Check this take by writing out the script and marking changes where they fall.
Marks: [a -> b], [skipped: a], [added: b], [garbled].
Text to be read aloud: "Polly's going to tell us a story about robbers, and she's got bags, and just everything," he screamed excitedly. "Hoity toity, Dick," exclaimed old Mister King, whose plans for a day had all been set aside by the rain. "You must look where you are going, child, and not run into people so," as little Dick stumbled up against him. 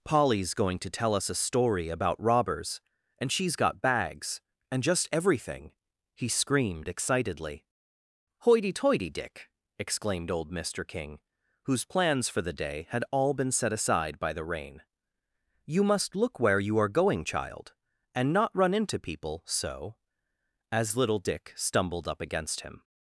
"Polly's going to tell us a story about robbers, and she's got bags, and just everything," he screamed excitedly. "Hoity toity, Dick," exclaimed old Mister King, whose plans for [a -> the] day had all been set aside by the rain. "You must look where you are going, child, and not run into people so," as little Dick stumbled up against him.